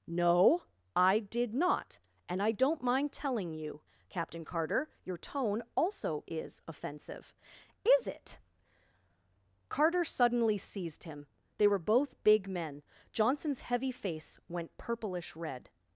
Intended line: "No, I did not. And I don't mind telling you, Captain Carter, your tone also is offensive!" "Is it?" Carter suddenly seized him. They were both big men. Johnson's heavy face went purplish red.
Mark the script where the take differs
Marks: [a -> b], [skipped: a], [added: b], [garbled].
"No, I did not. And I don't mind telling you, Captain Carter, your tone also is offensive!" "Is it?" Carter suddenly seized him. They were both big men. Johnson's heavy face went purplish red.